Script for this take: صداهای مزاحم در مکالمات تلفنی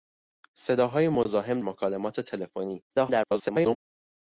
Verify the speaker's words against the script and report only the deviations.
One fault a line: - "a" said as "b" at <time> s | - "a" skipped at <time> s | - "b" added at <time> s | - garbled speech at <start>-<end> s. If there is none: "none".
- "در" skipped at 1.6 s
- garbled speech at 2.9-3.8 s